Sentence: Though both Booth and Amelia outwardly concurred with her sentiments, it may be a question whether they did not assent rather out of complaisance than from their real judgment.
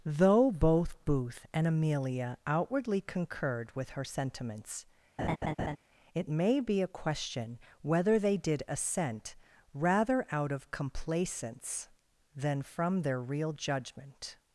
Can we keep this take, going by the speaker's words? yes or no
no